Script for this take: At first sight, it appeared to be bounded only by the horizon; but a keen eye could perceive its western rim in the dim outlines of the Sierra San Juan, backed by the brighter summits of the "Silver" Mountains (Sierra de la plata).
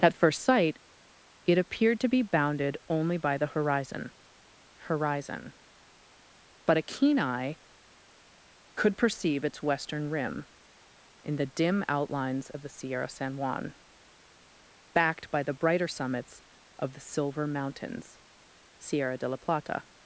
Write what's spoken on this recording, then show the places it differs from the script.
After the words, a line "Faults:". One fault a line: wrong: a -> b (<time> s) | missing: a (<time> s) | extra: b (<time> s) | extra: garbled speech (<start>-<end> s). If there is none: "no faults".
At first sight, it appeared to be bounded only by the horizon horizon; but a keen eye could perceive its western rim in the dim outlines of the Sierra San Juan, backed by the brighter summits of the "Silver" Mountains (Sierra de la plata).
Faults:
extra: horizon (4.9 s)